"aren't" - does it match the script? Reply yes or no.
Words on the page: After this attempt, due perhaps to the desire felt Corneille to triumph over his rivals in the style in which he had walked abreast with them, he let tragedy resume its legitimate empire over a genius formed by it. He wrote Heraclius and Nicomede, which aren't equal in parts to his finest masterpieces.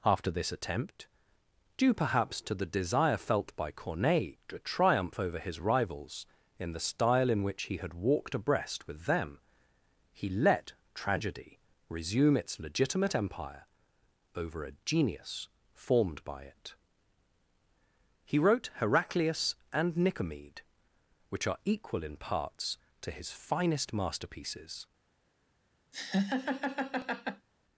no